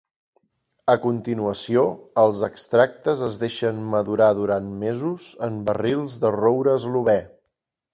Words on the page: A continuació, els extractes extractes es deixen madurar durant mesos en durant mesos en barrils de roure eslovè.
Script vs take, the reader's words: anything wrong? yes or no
yes